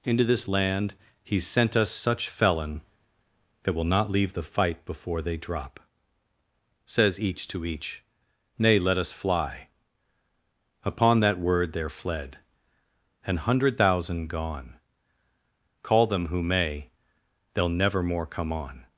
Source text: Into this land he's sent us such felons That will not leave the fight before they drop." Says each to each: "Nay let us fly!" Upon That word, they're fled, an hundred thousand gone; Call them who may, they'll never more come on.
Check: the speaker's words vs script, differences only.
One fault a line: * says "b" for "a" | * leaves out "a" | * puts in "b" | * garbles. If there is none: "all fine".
* says "felon" for "felons"